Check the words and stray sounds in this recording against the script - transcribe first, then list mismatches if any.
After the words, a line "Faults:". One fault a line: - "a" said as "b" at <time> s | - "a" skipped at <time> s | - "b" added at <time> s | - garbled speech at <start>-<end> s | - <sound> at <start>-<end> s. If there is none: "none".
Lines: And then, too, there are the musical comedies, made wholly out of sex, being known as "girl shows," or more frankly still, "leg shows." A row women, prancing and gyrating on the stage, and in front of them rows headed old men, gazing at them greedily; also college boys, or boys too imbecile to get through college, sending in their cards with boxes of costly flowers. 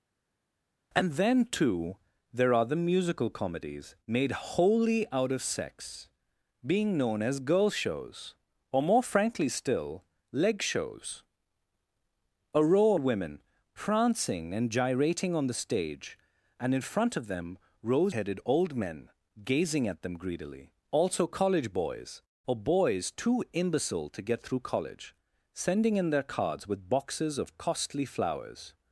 And then, too, there are the musical comedies, made wholly out of sex, being known as "girl shows," or more frankly still, "leg shows." A row women, prancing and gyrating on the stage, and in front of them rows headed old men, gazing at them greedily; also college boys, or boys too imbecile to get through college, sending in their cards with boxes of costly flowers.
Faults:
none